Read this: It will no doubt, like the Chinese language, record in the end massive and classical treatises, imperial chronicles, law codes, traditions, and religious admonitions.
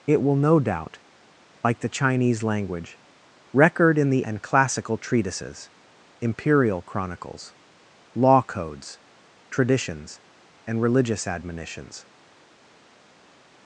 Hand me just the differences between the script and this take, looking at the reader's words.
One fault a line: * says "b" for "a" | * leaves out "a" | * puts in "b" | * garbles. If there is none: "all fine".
* leaves out "end massive"